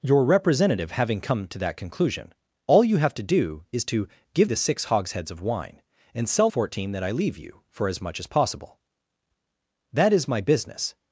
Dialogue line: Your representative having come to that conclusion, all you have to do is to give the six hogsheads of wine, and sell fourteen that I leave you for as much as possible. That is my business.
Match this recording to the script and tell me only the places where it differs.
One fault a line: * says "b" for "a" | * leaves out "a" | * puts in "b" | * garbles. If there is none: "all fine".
all fine